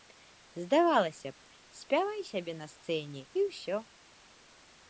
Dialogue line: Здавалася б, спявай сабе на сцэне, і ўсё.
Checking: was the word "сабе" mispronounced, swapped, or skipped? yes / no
no